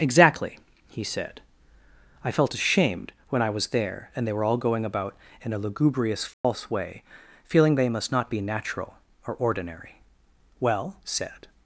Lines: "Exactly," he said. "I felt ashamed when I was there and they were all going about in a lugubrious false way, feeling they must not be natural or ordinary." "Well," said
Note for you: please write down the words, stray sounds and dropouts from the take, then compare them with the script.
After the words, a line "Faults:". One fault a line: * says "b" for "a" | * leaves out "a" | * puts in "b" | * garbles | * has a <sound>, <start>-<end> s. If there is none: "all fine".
"Exactly," he said. "I felt ashamed when I was there and they were all going about in a lugubrious false way, feeling they must not be natural or ordinary." "Well," said
Faults:
* has a dropout, 6.3-6.4 s